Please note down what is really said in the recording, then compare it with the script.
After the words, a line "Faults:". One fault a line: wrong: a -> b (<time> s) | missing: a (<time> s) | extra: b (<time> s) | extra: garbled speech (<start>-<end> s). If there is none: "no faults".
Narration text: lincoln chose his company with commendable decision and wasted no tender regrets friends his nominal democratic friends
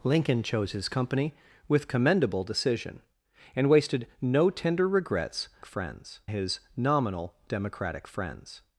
lincoln chose his company with commendable decision and wasted no tender regrets friends his nominal democratic friends
Faults:
no faults